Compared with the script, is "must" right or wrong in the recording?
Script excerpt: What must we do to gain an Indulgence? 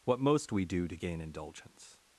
wrong